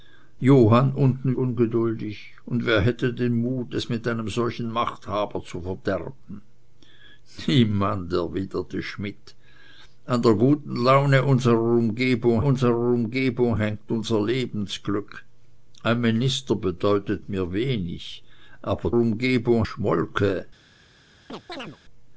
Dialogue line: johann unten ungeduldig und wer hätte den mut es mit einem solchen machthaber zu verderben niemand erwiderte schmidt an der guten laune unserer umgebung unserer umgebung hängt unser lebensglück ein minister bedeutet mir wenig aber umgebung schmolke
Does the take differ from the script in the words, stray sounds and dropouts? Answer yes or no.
yes